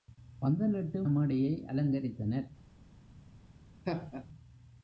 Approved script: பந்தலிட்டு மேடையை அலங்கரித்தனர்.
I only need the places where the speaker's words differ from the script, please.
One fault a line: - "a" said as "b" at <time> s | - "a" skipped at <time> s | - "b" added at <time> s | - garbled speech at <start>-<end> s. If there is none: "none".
none